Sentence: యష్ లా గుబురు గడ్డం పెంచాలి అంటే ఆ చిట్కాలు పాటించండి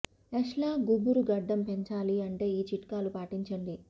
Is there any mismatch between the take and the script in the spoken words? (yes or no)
yes